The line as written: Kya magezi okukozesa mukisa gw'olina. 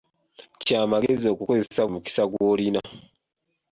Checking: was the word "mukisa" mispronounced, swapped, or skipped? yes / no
no